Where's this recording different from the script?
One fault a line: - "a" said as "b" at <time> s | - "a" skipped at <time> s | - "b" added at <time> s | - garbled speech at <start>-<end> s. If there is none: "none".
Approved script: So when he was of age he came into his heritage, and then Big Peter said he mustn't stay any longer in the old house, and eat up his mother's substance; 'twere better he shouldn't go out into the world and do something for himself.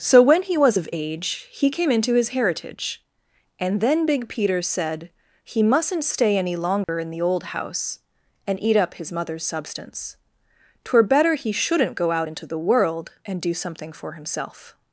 none